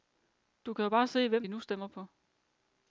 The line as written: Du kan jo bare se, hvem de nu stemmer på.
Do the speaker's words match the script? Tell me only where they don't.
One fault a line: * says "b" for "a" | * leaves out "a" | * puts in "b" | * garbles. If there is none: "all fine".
all fine